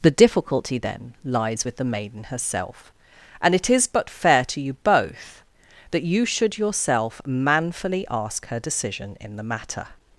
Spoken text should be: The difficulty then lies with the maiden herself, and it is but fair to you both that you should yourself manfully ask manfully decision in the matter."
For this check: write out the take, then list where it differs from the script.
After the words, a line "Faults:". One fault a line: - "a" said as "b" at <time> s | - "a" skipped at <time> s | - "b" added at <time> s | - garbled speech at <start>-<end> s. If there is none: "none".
The difficulty then lies with the maiden herself, and it is but fair to you both that you should yourself manfully ask her decision in the matter."
Faults:
- "manfully" said as "her" at 8.5 s